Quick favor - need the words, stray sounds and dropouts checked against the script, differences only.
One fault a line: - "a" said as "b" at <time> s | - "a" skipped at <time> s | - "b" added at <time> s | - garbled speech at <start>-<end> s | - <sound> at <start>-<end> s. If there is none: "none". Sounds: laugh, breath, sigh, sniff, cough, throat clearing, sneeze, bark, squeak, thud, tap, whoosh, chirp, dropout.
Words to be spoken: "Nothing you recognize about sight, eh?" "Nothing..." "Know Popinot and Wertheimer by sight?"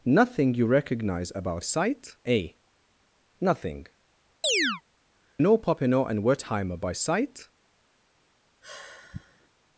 - chirp at 4.4-4.8 s
- sigh at 8.6-9.5 s